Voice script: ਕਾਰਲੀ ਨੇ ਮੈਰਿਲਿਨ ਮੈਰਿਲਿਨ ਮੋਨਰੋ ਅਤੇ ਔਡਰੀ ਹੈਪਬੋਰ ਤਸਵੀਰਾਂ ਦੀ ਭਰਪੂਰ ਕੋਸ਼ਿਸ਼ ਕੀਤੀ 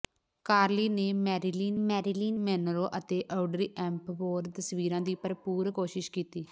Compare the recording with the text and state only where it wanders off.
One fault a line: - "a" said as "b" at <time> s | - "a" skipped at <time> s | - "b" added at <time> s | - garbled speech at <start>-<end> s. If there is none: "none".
none